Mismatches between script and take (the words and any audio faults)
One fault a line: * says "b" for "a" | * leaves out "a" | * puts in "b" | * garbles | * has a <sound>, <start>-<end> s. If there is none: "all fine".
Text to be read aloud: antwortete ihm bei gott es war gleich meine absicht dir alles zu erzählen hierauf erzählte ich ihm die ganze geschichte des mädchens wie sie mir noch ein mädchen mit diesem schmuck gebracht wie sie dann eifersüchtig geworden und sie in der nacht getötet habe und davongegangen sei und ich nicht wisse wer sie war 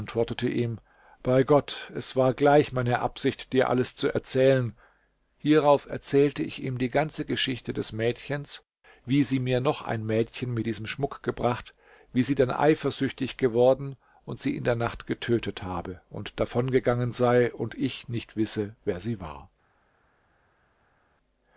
all fine